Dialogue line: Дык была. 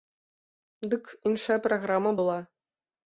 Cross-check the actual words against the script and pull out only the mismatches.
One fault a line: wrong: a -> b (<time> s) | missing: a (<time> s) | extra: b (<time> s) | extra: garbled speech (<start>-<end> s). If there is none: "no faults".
extra: іншая праграма (1.3 s)